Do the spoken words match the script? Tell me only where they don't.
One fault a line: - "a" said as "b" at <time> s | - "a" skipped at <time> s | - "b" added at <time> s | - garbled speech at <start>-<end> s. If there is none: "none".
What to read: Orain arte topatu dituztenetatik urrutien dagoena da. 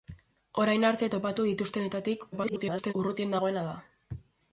- garbled speech at 2.3-2.9 s